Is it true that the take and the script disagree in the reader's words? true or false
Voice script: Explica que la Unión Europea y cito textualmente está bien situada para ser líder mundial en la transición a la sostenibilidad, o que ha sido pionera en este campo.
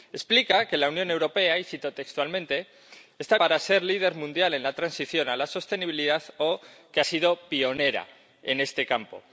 true